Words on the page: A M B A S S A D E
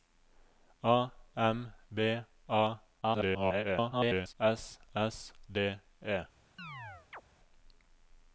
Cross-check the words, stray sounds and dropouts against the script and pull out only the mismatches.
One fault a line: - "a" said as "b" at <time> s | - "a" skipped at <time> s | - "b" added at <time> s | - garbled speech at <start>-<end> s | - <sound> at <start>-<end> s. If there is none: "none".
- garbled speech at 3.0-4.3 s
- "A" skipped at 5.3 s
- chirp at 6.6-7.2 s